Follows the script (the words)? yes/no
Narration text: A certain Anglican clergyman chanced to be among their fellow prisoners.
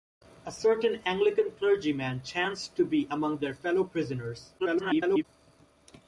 no